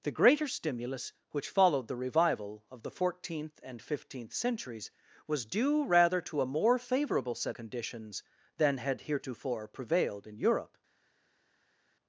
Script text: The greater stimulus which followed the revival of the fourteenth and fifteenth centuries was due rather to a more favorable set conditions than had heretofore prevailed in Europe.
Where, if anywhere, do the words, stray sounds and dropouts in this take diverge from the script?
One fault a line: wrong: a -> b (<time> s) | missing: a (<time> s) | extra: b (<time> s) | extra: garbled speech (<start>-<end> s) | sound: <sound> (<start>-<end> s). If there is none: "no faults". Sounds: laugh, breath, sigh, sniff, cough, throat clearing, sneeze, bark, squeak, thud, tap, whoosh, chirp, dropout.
no faults